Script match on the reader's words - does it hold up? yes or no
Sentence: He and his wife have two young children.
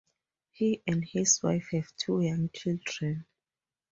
yes